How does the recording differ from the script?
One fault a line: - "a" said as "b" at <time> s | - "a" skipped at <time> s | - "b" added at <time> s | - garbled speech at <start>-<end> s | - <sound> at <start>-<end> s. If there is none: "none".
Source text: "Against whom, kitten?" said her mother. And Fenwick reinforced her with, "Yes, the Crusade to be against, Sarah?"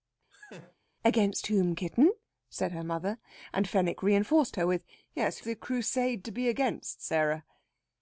- laugh at 0.3-0.7 s